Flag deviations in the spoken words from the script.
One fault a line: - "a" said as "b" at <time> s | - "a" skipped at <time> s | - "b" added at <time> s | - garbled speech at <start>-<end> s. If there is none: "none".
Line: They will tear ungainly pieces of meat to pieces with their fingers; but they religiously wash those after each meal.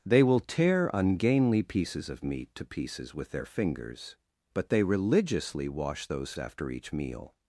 none